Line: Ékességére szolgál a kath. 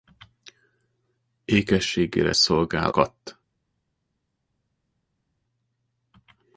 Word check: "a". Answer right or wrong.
wrong